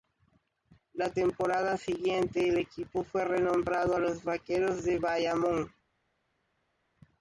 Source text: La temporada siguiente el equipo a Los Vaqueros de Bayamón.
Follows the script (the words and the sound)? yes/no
no